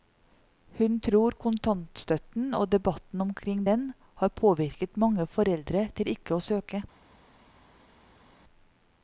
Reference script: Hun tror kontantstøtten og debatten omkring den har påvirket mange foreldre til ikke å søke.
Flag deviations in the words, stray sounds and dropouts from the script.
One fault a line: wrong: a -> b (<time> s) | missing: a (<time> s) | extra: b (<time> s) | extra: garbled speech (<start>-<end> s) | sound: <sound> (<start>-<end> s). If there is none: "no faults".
no faults